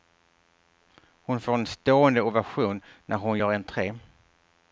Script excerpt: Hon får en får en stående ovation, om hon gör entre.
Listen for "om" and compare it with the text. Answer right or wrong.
wrong